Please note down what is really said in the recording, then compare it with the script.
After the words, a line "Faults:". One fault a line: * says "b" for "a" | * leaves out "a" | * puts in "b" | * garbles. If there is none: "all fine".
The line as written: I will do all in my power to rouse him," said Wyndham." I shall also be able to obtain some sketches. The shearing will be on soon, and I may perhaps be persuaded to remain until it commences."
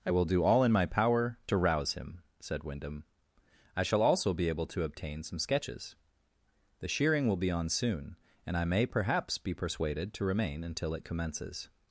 I will do all in my power to rouse him," said Wyndham." I shall also be able to obtain some sketches. The shearing will be on soon, and I may perhaps be persuaded to remain until it commences."
Faults:
all fine